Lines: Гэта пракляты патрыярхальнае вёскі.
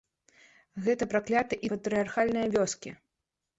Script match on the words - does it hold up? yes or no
yes